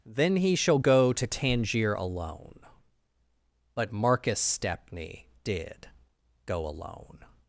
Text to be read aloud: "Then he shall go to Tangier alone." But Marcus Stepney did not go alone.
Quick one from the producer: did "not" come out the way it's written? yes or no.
no